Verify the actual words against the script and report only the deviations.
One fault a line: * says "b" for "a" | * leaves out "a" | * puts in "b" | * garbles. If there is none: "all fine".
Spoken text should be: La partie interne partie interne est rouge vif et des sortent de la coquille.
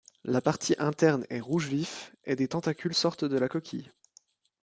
* leaves out "partie interne"
* puts in "tentacules"